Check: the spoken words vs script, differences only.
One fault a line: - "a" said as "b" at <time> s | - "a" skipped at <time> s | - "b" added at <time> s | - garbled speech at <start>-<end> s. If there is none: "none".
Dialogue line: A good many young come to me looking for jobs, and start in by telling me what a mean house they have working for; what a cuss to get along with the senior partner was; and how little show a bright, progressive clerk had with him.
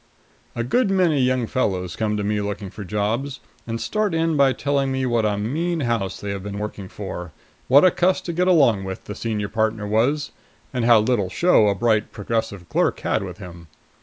- "fellows" added at 1.4 s
- "been" added at 6.4 s